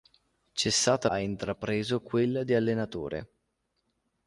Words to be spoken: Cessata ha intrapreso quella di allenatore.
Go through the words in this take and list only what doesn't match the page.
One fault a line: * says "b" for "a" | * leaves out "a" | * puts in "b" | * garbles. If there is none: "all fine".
all fine